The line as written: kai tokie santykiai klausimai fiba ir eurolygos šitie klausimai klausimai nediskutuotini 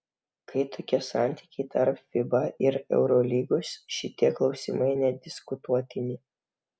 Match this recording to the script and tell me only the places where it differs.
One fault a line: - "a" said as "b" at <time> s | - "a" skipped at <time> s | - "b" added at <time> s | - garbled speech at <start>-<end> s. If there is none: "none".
- "klausimai" said as "tarp" at 1.7 s
- "klausimai" skipped at 4.9 s